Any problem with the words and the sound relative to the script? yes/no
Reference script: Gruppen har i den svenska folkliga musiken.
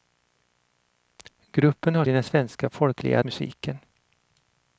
no